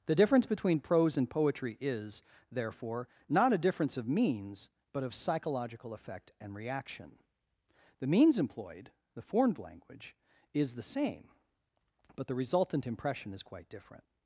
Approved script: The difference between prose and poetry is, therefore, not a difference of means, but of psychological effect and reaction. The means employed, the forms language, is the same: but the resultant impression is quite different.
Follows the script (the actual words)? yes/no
no